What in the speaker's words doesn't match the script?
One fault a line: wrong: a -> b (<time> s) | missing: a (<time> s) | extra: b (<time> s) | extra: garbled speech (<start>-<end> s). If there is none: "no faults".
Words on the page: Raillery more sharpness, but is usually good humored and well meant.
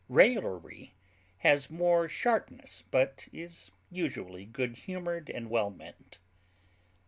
extra: has (1.4 s)